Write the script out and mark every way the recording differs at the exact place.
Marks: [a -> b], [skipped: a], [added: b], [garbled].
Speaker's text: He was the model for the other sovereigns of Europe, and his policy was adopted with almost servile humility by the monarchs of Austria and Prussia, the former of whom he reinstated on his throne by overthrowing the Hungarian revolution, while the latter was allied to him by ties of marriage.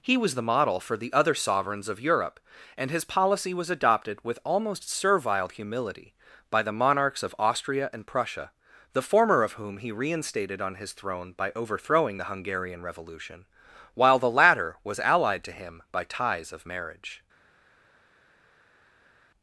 He was the model for the other sovereigns of Europe, and his policy was adopted with almost servile humility by the monarchs of Austria and Prussia, the former of whom he reinstated on his throne by overthrowing the Hungarian revolution, while the latter was allied to him by ties of marriage.